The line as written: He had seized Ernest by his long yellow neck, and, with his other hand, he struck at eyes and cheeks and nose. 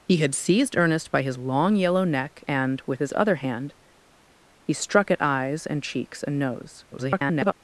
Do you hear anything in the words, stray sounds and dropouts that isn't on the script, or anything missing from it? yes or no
yes